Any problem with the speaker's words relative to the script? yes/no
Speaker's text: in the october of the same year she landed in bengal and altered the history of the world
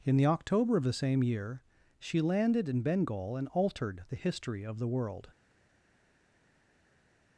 no